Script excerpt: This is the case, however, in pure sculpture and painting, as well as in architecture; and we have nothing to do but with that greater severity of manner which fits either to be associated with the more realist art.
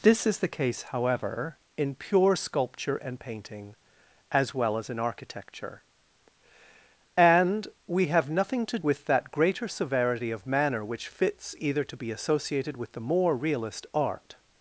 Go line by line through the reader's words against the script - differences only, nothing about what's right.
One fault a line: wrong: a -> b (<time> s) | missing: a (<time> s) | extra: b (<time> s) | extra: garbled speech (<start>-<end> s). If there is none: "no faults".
missing: do but (8.8 s)